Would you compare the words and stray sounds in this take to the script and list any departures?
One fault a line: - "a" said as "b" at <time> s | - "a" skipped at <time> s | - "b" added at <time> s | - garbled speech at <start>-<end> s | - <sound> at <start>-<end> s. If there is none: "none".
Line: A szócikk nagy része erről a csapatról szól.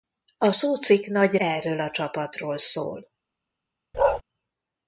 - "része" skipped at 1.4 s
- bark at 3.9-4.2 s